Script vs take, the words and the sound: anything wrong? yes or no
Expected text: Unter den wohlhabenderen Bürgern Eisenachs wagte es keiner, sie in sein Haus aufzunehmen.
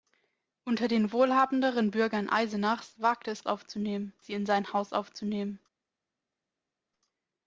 yes